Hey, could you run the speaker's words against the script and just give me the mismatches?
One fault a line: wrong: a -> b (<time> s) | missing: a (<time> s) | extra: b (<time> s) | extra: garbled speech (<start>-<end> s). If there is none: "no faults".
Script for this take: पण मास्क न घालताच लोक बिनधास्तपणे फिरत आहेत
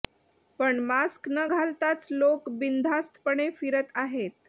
no faults